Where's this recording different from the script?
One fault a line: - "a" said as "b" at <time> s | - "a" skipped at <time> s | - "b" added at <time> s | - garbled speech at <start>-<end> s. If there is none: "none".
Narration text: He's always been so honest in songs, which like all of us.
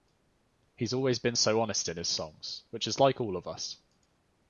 - "his" added at 2.0 s
- "is" added at 2.9 s